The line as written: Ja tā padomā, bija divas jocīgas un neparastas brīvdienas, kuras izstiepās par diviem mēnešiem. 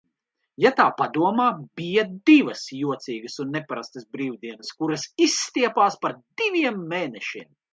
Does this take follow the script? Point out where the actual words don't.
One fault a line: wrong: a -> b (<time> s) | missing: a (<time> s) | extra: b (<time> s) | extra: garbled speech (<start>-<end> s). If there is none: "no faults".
no faults